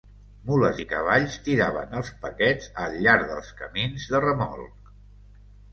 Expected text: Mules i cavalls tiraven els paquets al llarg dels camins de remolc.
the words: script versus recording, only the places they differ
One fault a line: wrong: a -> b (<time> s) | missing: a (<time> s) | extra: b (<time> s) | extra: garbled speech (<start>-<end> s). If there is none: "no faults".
no faults